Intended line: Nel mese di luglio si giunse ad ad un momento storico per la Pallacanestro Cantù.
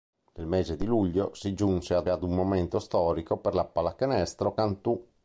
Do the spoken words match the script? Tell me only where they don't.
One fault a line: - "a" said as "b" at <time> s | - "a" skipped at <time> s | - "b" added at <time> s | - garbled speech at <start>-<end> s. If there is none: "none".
none